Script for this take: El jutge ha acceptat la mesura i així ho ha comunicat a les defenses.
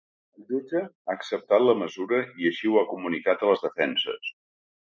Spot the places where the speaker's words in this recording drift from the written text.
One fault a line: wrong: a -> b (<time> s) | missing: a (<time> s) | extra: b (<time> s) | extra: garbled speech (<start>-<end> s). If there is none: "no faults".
no faults